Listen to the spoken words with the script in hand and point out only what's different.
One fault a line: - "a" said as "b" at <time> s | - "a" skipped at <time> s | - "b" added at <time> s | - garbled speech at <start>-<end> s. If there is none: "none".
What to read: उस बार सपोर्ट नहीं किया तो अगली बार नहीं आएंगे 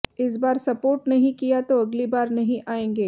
- "उस" said as "इस" at 0.2 s